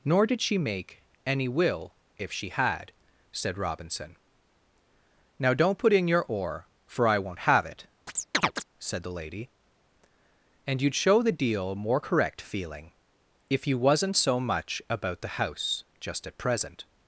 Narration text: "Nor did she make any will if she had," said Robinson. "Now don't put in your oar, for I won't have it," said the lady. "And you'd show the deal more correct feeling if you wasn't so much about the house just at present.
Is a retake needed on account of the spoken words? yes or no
no